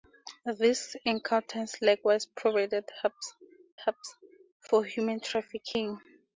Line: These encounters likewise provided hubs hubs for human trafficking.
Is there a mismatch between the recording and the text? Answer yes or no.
no